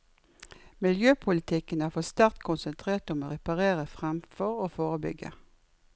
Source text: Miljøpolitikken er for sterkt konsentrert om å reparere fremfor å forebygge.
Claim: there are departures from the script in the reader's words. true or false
false